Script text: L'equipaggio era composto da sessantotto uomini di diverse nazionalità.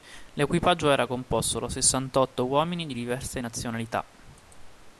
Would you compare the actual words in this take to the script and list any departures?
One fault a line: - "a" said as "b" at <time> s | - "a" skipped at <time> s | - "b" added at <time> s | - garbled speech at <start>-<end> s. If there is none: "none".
none